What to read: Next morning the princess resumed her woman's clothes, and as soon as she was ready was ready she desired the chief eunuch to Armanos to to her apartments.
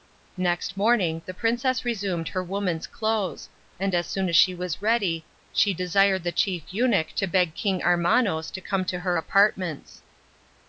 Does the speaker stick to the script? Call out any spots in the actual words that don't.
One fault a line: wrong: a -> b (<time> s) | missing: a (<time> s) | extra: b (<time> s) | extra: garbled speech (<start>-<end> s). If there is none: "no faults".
missing: was ready (5.3 s)
extra: beg King (7.3 s)
extra: come (8.6 s)